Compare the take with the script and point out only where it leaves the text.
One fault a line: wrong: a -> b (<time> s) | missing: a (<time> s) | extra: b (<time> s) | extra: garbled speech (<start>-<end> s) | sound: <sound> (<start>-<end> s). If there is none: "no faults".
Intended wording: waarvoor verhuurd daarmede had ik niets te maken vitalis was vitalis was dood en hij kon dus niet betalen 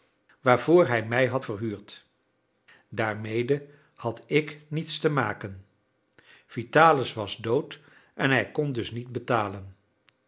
extra: hij mij had (0.9 s)
missing: vitalis was (7.4 s)